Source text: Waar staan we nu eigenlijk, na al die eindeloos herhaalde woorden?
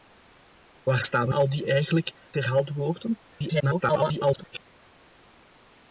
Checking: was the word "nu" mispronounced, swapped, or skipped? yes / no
yes